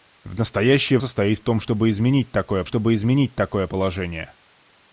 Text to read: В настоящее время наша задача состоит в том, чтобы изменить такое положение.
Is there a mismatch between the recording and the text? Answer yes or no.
yes